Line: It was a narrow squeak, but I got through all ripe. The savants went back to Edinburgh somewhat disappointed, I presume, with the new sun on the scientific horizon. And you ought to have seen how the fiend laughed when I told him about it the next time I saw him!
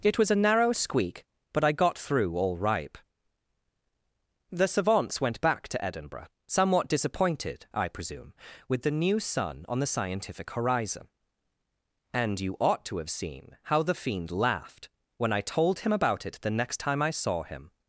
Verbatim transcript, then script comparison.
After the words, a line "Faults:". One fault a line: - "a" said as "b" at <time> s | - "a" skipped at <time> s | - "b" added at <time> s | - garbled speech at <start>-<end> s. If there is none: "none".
It was a narrow squeak, but I got through all ripe. The savants went back to Edinburgh somewhat disappointed, I presume, with the new sun on the scientific horizon. And you ought to have seen how the fiend laughed when I told him about it the next time I saw him!
Faults:
none